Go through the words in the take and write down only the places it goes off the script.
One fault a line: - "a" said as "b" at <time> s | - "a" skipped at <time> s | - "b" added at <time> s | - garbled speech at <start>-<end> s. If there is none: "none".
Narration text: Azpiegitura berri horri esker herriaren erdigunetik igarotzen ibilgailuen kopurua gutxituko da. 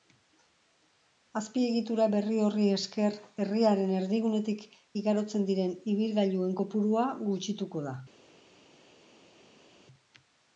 - "diren" added at 5.5 s